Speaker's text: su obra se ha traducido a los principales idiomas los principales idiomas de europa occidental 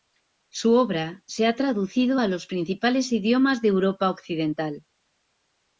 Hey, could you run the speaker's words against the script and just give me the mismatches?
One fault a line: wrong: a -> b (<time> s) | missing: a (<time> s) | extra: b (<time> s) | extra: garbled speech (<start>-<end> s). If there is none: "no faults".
missing: los principales idiomas (3.6 s)